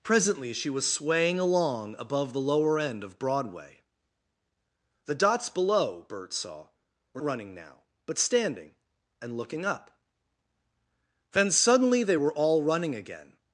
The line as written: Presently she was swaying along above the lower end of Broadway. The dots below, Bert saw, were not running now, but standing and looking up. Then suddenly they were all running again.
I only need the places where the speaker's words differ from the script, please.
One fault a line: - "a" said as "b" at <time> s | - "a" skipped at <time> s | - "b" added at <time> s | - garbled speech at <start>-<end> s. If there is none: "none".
- "not" skipped at 7.2 s